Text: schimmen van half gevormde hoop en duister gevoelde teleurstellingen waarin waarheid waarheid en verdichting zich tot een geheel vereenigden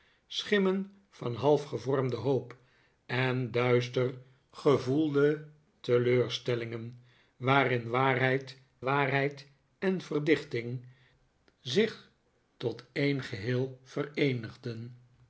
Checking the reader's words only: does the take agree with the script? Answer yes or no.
yes